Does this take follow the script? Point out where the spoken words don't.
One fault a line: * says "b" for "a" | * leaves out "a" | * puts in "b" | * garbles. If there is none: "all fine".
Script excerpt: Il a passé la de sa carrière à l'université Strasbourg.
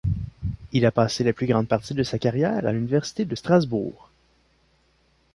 * puts in "plus grande partie"
* puts in "de"